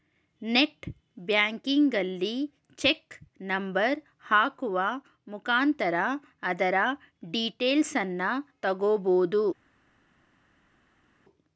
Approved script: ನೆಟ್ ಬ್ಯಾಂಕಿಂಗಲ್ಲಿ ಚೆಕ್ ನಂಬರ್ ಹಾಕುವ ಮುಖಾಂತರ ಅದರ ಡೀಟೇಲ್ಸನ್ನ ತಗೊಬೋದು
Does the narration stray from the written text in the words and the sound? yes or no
no